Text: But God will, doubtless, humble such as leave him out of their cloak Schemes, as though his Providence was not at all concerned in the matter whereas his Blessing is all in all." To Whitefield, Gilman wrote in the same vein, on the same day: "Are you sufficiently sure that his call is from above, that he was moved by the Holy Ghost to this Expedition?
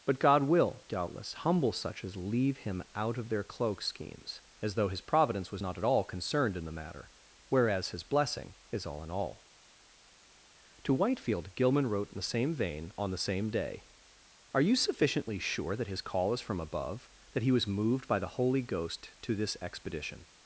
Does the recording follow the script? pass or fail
pass